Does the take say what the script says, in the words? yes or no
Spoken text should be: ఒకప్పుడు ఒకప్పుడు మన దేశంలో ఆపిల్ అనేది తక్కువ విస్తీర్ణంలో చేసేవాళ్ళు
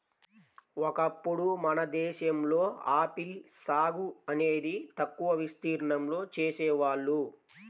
no